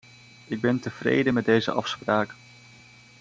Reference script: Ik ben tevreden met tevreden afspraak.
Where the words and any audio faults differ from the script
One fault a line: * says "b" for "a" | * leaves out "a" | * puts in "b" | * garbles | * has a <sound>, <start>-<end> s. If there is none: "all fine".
* says "deze" for "tevreden"